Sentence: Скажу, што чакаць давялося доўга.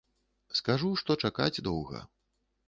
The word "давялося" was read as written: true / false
false